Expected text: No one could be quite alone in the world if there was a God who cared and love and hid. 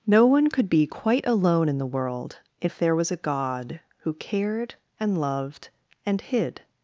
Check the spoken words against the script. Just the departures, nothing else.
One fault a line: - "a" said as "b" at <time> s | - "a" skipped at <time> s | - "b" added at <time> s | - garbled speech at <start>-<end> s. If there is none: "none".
- "love" said as "loved" at 5.2 s